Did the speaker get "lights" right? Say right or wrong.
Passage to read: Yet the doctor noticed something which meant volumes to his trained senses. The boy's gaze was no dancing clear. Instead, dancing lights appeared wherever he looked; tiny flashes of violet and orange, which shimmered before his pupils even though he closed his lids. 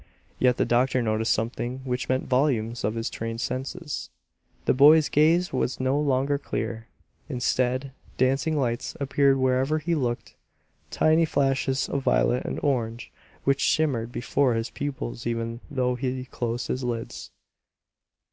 right